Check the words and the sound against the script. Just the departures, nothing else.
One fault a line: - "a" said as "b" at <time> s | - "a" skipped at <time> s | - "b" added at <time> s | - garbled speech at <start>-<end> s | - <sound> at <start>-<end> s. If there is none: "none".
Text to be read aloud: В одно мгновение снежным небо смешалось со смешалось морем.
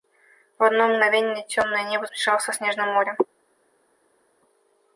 - "снежным" said as "темное" at 1.5 s
- "смешалось" said as "снежным" at 2.5 s